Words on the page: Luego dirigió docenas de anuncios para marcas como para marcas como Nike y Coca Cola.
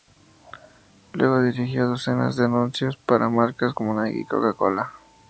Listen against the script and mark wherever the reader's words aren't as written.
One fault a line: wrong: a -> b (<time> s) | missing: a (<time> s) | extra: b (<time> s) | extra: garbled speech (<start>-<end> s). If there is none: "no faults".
missing: para marcas como (4.0 s)